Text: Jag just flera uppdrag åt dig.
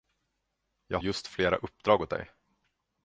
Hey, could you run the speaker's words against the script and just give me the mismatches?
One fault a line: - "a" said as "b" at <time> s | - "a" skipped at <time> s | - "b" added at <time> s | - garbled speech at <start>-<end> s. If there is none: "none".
none